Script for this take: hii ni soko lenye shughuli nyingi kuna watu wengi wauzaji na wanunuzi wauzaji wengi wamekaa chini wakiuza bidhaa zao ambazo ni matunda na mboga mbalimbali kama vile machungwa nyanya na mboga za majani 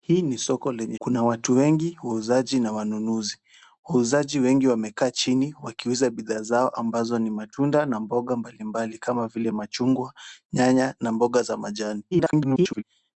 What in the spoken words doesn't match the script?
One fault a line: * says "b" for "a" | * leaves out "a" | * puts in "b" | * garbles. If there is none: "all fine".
* leaves out "shughuli nyingi"
* garbles